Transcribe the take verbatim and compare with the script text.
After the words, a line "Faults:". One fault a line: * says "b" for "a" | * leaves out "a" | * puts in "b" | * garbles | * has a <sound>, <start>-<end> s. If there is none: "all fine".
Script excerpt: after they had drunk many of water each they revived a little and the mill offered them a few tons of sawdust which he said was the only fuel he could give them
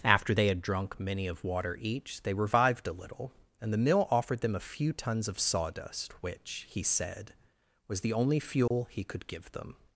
after they had drunk many of water each they revived a little and the mill offered them a few tons of sawdust which he said was the only fuel he could give them
Faults:
* has a dropout, 8.7-8.7 s